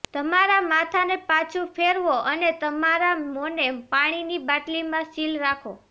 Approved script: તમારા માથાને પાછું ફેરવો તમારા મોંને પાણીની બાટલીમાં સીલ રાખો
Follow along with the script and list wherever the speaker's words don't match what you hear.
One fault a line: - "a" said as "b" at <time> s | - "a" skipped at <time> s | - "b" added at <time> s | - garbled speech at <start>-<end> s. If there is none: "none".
- "અને" added at 2.2 s